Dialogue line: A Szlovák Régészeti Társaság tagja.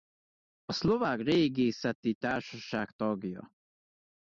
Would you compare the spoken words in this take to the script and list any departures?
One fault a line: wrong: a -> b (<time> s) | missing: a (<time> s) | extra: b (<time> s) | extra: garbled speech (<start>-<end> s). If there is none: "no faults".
no faults